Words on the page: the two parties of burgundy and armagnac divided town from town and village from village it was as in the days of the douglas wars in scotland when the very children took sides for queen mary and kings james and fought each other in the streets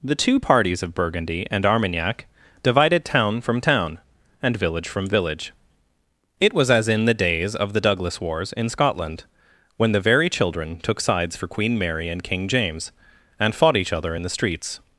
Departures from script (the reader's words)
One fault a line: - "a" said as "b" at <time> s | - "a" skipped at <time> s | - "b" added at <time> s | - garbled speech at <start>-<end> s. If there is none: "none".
- "kings" said as "king" at 12.2 s